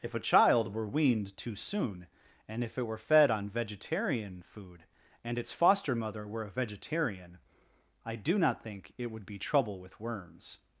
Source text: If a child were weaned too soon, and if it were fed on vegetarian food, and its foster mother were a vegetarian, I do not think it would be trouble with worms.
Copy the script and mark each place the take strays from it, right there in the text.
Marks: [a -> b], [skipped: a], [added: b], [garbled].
If a child were weaned too soon, and if it were fed on vegetarian food, and its foster mother were a vegetarian, I do not think it would be trouble with worms.